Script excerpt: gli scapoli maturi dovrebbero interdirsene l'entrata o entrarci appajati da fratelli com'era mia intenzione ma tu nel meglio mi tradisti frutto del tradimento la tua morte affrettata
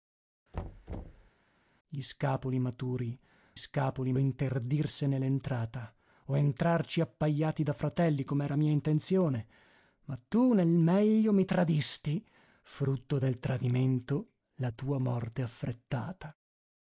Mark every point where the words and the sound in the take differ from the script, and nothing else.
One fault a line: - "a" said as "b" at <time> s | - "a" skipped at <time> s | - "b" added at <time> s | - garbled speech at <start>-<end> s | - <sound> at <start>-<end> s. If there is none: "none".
- thud at 0.5-1.3 s
- "dovrebbero" said as "scapoli" at 3.5 s